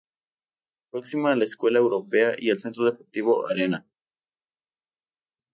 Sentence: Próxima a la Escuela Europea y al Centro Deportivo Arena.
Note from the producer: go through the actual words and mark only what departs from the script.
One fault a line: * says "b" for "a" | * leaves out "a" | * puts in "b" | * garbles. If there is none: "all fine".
all fine